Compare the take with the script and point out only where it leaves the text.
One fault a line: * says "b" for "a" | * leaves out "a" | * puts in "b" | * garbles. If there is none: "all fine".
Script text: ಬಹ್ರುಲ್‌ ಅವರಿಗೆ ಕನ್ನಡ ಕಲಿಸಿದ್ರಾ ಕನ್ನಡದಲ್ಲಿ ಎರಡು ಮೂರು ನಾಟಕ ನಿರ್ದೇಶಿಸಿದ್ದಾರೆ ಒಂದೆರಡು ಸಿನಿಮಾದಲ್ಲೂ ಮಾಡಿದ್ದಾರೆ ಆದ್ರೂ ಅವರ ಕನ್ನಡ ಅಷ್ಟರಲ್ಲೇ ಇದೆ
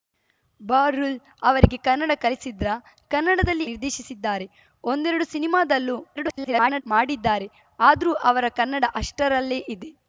* leaves out "ಎರಡು ಮೂರು ನಾಟಕ"
* garbles